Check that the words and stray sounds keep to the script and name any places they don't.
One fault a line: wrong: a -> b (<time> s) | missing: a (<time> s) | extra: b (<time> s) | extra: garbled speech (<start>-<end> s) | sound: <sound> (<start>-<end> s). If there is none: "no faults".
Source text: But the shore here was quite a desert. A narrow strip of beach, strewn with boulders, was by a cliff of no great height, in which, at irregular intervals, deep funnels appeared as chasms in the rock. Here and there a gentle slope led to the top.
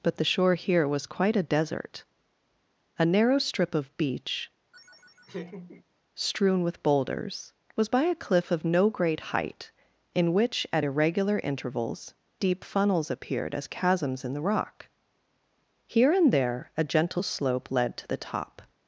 sound: laugh (4.7-5.8 s)